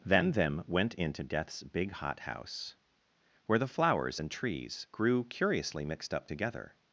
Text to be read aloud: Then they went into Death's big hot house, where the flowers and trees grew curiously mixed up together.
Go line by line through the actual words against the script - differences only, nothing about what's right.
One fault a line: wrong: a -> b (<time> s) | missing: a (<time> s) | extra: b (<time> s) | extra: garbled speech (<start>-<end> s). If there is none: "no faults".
wrong: they -> them (0.3 s)